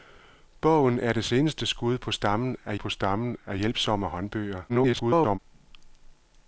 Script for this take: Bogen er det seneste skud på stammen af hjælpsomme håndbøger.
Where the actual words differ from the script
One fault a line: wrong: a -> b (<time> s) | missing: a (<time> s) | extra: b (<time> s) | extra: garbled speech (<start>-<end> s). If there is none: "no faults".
extra: på stammen af (2.7 s)
extra: garbled speech (4.7-5.4 s)